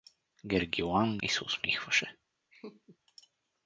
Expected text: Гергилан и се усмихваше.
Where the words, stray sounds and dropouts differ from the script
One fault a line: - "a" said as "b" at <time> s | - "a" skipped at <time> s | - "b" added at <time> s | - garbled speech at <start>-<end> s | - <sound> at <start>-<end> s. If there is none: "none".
- laugh at 2.5-3.0 s